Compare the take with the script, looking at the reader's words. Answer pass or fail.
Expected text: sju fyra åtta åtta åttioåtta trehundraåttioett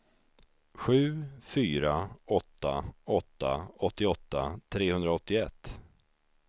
pass